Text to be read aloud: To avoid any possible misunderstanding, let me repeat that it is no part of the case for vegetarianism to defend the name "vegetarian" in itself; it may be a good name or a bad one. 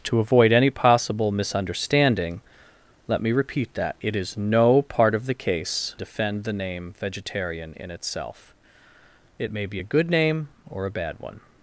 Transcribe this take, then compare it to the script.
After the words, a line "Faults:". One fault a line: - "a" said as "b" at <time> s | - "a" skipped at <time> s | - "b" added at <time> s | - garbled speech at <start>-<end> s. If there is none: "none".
To avoid any possible misunderstanding, let me repeat that it is no part of the case defend the name "vegetarian" in itself; it may be a good name or a bad one.
Faults:
- "for vegetarianism to" skipped at 6.0 s